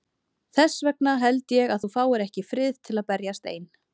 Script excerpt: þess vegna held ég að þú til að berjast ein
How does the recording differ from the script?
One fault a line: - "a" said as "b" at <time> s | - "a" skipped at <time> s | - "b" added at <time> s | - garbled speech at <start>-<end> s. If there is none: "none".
- "fáir ekki frið" added at 2.0 s